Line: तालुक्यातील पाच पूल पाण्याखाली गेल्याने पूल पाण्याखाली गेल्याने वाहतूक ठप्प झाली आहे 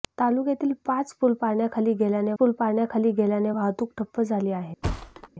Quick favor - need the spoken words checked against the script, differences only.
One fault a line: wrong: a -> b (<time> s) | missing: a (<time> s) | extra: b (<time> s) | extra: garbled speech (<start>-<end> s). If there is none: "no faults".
no faults